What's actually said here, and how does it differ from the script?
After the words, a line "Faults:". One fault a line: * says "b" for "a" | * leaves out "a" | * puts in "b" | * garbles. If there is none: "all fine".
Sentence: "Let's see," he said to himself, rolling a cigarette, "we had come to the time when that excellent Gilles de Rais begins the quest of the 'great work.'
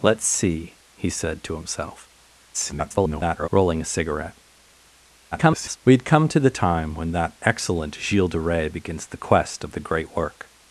"Let's see," he said to himself, [garbled] rolling a cigarette, [garbled] "we had come to the time when that excellent Gilles de Rais begins the quest of the 'great work.'
Faults:
* garbles
* garbles